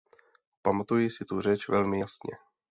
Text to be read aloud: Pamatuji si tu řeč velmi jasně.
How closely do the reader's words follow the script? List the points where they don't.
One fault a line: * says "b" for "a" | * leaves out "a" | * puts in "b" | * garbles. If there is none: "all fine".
all fine